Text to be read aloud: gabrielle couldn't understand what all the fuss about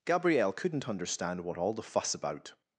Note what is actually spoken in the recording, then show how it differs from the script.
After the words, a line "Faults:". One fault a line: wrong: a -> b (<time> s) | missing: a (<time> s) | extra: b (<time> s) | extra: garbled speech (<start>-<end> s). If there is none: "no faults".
gabrielle couldn't understand what all the fuss about
Faults:
no faults